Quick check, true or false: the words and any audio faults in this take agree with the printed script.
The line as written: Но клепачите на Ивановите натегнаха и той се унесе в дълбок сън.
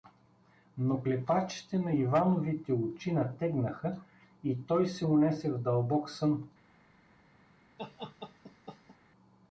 false